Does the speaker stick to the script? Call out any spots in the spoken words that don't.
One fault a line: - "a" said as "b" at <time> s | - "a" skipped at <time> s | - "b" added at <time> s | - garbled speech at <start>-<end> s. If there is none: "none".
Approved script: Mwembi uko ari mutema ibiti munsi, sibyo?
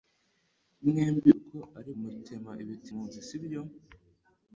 none